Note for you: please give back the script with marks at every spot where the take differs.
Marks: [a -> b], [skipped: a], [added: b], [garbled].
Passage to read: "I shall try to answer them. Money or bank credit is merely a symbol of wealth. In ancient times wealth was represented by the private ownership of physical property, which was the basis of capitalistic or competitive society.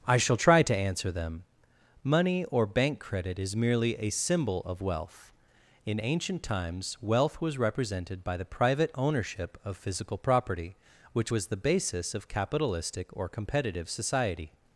"I shall try to answer them. Money or bank credit is merely a symbol of wealth. In ancient times wealth was represented by the private ownership of physical property, which was the basis of capitalistic or competitive society.